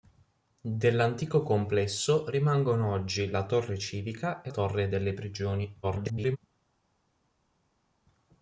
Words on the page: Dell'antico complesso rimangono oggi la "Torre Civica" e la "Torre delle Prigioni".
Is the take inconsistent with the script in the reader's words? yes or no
yes